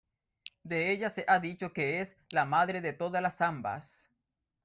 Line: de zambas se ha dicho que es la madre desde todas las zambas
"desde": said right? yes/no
no